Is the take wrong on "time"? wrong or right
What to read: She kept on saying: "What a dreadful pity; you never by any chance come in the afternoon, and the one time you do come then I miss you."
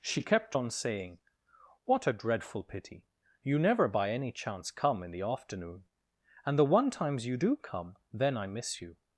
wrong